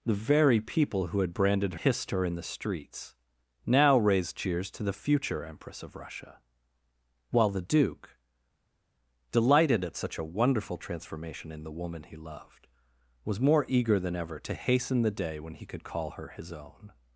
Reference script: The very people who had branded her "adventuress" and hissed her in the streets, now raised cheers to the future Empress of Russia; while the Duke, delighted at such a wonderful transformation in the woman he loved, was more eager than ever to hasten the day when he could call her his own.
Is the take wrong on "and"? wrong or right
wrong